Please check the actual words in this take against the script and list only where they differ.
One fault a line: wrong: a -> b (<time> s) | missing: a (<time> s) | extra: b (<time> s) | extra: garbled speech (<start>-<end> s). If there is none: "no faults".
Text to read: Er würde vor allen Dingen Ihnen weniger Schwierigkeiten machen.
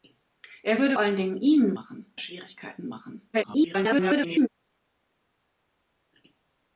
missing: vor (1.0 s)
wrong: weniger -> machen (1.7 s)
extra: garbled speech (3.3-4.5 s)